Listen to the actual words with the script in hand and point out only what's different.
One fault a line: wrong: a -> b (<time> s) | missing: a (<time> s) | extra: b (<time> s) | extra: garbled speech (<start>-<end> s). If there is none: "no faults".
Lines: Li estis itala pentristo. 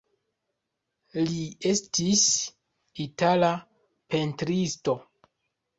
no faults